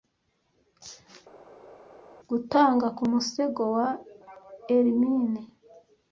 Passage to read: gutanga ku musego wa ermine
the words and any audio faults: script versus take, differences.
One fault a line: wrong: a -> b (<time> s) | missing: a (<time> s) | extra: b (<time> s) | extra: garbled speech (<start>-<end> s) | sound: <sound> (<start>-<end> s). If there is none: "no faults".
no faults